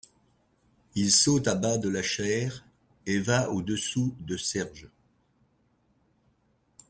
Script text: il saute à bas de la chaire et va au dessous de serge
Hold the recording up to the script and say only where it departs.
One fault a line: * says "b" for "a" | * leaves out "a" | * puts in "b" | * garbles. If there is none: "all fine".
all fine